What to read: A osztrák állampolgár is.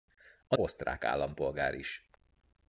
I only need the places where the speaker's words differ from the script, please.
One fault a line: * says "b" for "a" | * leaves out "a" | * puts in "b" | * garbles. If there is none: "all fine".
all fine